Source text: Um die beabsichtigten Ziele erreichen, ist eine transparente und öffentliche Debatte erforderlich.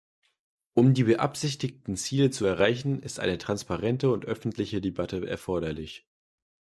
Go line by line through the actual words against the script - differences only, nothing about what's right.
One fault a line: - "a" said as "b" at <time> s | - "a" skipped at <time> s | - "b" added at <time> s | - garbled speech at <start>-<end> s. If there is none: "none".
- "zu" added at 2.3 s